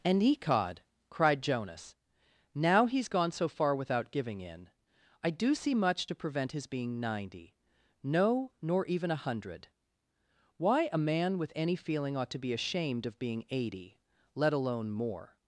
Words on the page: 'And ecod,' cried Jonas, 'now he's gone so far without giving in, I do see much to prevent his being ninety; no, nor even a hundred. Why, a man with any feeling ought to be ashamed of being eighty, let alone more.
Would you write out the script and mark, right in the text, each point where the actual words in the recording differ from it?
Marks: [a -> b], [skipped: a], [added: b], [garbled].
'And ecod,' cried Jonas, 'now he's gone so far without giving in, I do see much to prevent his being ninety; no, nor even a hundred. Why, a man with any feeling ought to be ashamed of being eighty, let alone more.